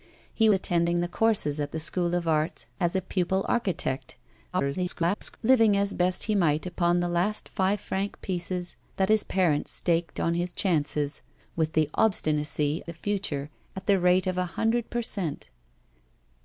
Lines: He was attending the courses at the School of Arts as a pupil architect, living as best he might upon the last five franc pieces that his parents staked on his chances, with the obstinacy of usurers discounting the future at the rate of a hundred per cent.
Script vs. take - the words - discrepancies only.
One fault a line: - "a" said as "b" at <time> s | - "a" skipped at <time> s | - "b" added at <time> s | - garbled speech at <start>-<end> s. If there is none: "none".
- "was" skipped at 0.5 s
- garbled speech at 4.5-5.4 s
- "of usurers discounting" skipped at 12.8 s